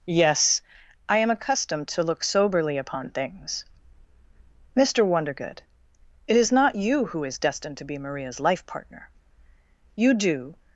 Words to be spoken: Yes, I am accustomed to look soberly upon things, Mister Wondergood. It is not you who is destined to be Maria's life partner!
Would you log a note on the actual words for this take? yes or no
yes